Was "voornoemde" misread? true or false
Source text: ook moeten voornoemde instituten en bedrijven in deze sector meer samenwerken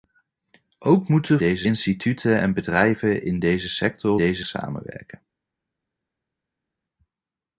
true